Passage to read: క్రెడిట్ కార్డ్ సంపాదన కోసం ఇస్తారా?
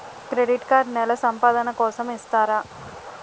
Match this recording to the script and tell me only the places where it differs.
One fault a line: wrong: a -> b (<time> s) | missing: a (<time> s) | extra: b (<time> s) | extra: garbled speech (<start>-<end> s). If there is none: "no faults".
extra: నెల (0.9 s)